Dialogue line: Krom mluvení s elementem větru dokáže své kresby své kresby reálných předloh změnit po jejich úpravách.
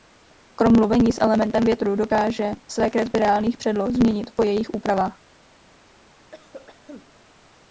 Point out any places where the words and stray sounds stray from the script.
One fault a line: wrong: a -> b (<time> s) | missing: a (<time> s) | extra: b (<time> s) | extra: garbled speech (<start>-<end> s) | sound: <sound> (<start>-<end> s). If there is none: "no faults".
missing: své kresby (3.2 s)
sound: cough (6.3-7.1 s)